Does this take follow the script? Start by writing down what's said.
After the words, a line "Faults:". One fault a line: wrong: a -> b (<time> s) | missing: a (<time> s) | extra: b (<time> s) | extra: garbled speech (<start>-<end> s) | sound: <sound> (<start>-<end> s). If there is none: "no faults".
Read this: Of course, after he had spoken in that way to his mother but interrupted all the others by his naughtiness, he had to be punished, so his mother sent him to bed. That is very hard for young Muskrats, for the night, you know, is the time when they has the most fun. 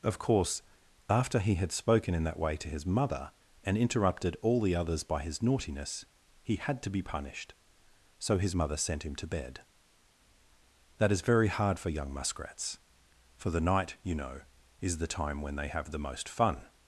Of course, after he had spoken in that way to his mother and interrupted all the others by his naughtiness, he had to be punished, so his mother sent him to bed. That is very hard for young Muskrats, for the night, you know, is the time when they have the most fun.
Faults:
wrong: but -> and (3.6 s)
wrong: has -> have (15.7 s)